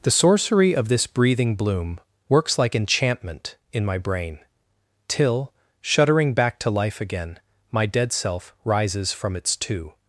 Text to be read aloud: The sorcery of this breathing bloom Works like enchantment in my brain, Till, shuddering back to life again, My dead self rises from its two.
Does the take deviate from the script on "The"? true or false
false